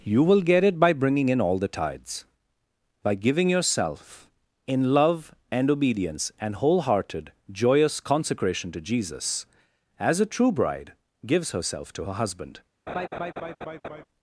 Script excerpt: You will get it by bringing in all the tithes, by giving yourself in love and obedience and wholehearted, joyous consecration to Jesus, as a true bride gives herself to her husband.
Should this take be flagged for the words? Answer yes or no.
no